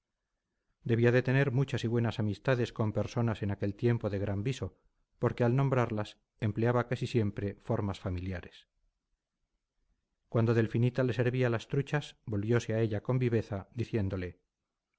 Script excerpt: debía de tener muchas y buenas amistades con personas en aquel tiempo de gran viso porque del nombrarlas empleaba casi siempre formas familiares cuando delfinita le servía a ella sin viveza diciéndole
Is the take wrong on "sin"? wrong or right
wrong